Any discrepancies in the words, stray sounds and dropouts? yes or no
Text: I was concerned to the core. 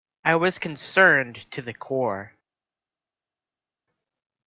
no